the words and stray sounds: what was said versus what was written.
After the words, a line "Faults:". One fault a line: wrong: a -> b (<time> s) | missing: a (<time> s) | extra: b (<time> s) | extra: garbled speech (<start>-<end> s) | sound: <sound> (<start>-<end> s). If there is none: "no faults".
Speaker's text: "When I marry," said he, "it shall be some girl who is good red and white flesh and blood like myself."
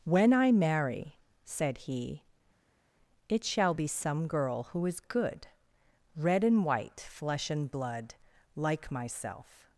"When I marry," said he, "it shall be some girl who is good red and white flesh and blood like myself."
Faults:
no faults